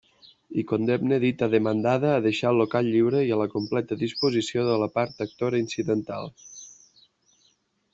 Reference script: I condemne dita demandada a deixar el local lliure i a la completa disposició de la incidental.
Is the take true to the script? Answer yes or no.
no